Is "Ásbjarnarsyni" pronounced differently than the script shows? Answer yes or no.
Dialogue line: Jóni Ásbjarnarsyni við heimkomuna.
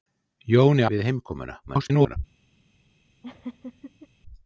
yes